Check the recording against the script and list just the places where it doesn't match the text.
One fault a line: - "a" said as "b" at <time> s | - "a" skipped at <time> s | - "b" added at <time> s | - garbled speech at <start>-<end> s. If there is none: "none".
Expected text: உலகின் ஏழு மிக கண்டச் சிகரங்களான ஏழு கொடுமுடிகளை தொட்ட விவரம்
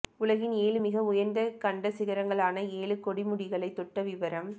- "உயர்ந்த" added at 1.1 s